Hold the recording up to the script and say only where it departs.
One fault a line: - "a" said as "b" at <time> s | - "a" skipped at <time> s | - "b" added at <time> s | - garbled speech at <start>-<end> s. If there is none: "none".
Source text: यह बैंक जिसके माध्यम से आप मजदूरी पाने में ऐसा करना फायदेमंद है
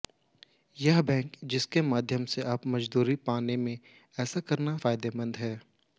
none